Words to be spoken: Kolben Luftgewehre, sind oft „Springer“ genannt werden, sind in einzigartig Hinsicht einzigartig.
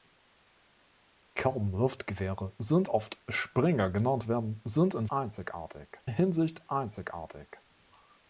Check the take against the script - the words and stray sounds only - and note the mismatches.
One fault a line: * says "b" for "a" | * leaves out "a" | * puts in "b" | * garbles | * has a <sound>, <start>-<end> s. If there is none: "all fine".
all fine